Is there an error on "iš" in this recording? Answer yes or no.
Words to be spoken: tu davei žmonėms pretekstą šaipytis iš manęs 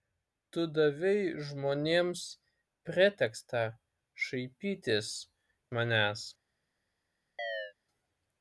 yes